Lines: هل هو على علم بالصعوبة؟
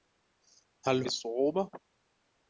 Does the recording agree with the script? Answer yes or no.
no